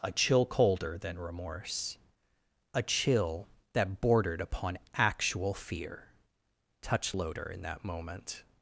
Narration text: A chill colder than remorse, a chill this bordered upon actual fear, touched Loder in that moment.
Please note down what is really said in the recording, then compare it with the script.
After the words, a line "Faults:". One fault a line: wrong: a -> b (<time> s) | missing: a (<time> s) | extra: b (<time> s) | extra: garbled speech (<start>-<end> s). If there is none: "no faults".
A chill colder than remorse, a chill that bordered upon actual fear, touched Loder in that moment.
Faults:
wrong: this -> that (3.7 s)